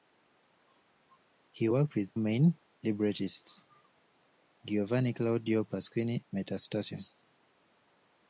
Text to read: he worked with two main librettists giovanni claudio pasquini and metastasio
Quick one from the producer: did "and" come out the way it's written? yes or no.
no